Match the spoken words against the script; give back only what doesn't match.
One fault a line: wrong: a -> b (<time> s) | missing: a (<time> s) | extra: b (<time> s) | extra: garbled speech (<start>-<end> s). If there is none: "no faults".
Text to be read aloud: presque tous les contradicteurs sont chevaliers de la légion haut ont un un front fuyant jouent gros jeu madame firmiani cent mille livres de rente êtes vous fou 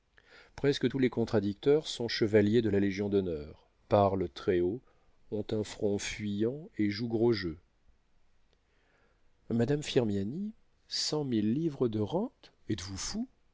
extra: d'honneur parlent très (3.1 s)
missing: un (5.6 s)
extra: et (6.8 s)